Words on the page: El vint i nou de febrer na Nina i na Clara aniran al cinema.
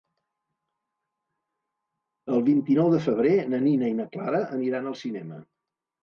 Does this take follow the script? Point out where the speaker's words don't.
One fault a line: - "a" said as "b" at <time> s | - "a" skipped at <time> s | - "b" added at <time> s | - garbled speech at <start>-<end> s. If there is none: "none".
none